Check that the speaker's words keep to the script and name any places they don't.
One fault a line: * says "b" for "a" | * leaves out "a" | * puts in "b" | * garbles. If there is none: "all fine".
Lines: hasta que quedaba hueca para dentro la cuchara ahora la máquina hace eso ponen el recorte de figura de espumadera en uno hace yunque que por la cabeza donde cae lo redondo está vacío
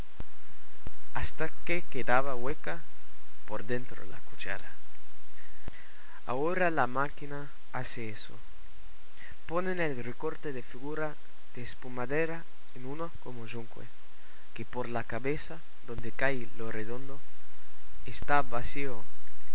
* says "por" for "para"
* says "como" for "hace"